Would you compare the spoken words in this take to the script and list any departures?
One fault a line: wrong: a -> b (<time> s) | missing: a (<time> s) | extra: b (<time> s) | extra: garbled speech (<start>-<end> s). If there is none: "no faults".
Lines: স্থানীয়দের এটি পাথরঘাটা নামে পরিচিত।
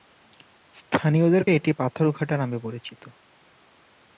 no faults